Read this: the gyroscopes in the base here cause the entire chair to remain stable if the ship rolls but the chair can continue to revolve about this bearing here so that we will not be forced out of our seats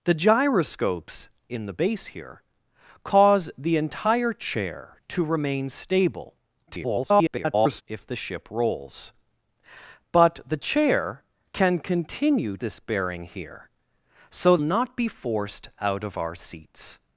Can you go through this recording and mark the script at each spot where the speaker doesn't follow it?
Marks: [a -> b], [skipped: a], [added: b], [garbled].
the gyroscopes in the base here cause the entire chair to remain stable [garbled] if the ship rolls but the chair can continue [skipped: to revolve about] this bearing here so [skipped: that we will] not be forced out of our seats